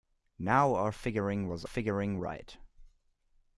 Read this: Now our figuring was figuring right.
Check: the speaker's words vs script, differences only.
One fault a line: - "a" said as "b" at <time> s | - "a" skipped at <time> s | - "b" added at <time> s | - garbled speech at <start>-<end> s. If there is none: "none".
none